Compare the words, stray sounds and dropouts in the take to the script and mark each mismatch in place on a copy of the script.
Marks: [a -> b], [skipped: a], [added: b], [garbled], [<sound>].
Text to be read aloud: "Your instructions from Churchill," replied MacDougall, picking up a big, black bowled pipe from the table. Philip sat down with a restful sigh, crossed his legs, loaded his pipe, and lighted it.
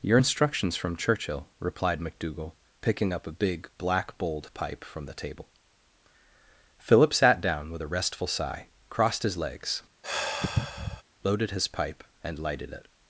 "Your instructions from Churchill," replied MacDougall, picking up a big, black bowled pipe from the table. Philip sat down with a restful sigh, crossed his legs, [sigh] loaded his pipe, and lighted it.